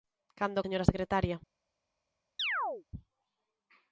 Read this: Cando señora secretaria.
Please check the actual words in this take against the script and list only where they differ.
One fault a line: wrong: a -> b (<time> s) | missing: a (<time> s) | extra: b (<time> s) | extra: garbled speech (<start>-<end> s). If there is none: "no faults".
no faults